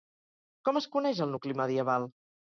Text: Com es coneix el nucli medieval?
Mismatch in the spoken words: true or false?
false